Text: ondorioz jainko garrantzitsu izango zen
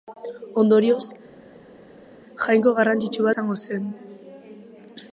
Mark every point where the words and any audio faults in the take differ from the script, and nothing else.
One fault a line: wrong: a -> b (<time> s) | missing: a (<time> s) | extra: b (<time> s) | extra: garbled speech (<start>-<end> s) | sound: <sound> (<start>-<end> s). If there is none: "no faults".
no faults